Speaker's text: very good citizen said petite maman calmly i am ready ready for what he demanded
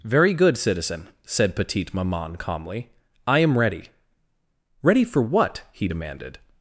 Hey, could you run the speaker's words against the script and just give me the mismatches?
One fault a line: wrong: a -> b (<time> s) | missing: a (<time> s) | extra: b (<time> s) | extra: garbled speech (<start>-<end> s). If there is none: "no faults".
no faults